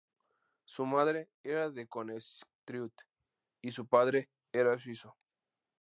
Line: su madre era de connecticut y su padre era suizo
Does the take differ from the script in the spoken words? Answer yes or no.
no